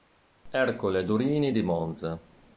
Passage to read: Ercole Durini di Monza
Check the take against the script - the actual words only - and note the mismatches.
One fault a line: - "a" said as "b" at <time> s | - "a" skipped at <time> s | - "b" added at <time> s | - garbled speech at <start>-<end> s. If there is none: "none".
none